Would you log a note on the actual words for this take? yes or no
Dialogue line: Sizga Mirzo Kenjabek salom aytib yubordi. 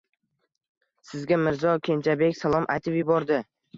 no